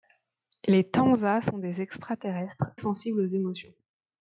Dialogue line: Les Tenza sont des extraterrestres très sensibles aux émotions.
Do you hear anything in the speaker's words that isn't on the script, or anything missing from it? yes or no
yes